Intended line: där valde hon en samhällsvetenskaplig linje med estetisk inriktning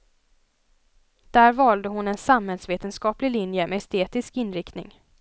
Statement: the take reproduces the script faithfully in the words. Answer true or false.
true